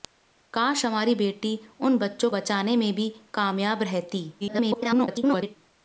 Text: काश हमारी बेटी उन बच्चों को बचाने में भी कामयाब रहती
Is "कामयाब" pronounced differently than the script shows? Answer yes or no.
no